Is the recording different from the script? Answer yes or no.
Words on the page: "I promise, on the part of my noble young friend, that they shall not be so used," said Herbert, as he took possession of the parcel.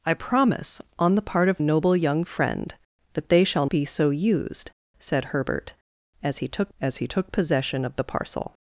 yes